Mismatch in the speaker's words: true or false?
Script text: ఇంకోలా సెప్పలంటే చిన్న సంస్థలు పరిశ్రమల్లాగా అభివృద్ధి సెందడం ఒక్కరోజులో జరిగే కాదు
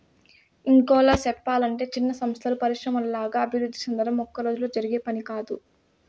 true